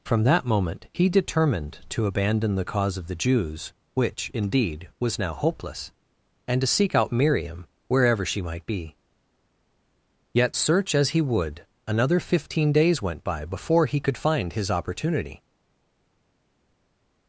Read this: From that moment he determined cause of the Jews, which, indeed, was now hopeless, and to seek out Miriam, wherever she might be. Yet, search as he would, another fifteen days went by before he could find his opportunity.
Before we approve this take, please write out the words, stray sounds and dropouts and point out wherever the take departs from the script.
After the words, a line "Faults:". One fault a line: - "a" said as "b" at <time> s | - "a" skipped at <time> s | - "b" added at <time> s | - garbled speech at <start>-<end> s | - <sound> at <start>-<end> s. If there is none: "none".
From that moment he determined to abandon the cause of the Jews, which, indeed, was now hopeless, and to seek out Miriam, wherever she might be. Yet, search as he would, another fifteen days went by before he could find his opportunity.
Faults:
- "to abandon the" added at 1.9 s